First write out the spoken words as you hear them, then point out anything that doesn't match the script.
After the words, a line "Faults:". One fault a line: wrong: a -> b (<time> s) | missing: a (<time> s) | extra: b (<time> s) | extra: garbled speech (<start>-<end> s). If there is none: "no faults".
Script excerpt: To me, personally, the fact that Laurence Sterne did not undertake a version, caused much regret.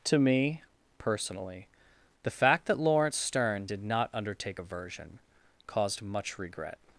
To me, personally, the fact that Laurence Sterne did not undertake a version, caused much regret.
Faults:
no faults